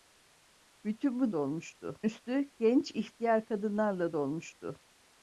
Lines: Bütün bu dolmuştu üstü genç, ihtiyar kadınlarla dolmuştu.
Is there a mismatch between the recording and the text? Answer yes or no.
no